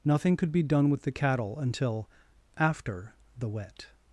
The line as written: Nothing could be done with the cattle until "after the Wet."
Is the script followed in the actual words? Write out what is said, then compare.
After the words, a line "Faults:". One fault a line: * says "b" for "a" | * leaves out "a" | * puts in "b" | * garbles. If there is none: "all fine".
Nothing could be done with the cattle until "after the Wet."
Faults:
all fine